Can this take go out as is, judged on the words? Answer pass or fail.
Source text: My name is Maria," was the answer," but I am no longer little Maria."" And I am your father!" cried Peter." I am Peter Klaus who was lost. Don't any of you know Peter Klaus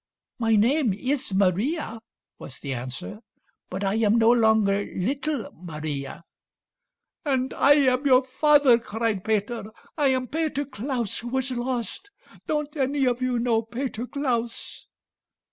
pass